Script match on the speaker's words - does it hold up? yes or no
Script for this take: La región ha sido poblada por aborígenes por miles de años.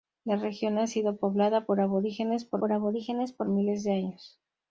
no